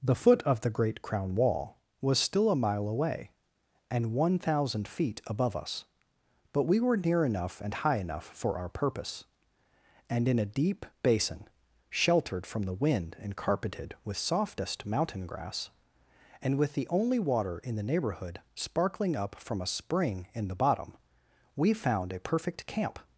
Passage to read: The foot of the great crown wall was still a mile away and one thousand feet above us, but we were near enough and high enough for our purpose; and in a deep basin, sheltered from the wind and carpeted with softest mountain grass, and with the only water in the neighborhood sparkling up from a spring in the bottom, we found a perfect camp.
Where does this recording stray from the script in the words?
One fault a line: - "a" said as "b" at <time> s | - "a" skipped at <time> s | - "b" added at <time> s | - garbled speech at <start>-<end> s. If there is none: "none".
none